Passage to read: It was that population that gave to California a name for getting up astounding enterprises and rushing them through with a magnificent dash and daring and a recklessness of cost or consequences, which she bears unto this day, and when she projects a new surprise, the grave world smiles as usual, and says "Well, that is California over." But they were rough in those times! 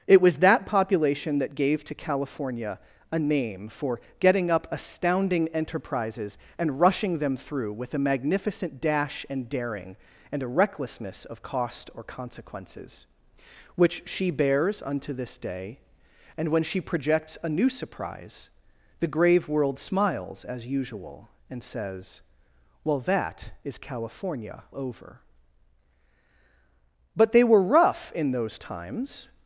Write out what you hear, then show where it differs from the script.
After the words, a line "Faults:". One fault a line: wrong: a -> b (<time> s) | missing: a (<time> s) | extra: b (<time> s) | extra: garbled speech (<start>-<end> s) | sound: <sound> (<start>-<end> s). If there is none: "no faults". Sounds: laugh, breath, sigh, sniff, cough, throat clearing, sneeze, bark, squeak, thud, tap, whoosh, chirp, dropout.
It was that population that gave to California a name for getting up astounding enterprises and rushing them through with a magnificent dash and daring and a recklessness of cost or consequences, which she bears unto this day, and when she projects a new surprise, the grave world smiles as usual, and says "Well, that is California over." But they were rough in those times!
Faults:
no faults